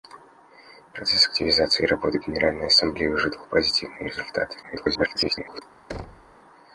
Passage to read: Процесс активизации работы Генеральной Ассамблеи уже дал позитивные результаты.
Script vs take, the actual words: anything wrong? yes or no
yes